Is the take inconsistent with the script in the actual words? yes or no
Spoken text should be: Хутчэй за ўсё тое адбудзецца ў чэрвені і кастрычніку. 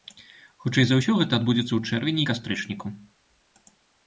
yes